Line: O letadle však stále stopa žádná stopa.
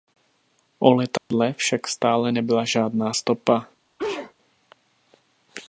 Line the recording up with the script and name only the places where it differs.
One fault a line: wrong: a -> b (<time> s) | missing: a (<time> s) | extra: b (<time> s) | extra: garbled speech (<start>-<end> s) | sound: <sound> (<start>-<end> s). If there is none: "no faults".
sound: dropout (1.2-1.3 s)
wrong: stopa -> nebyla (2.3 s)
sound: sneeze (4.0-4.3 s)